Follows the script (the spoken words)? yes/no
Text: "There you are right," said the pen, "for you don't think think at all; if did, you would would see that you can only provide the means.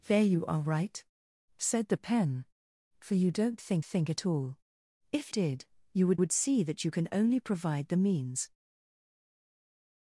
yes